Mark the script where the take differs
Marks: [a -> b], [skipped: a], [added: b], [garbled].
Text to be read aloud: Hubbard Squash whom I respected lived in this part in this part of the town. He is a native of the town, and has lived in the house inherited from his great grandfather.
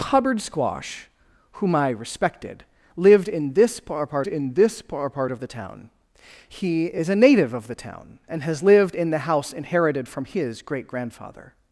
Hubbard Squash whom I respected lived in this part in this part of the town. He is a native of the town, and has lived in the house inherited from his great grandfather.